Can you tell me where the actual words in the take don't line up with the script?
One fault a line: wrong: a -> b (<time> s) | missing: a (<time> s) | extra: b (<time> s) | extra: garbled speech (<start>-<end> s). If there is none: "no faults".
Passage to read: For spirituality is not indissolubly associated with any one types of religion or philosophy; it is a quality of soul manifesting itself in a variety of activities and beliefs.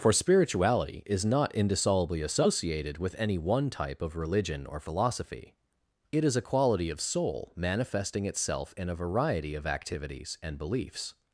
wrong: types -> type (3.7 s)